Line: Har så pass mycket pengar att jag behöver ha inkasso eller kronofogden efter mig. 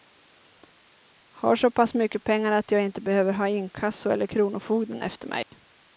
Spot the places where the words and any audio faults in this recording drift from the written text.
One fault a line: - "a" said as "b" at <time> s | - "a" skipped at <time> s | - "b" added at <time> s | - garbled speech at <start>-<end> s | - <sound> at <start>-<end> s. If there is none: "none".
- "inte" added at 2.8 s
- dropout at 5.4-5.5 s